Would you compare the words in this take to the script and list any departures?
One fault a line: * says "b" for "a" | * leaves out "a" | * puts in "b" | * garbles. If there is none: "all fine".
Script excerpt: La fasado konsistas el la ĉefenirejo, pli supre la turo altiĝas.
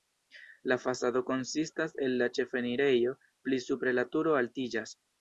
all fine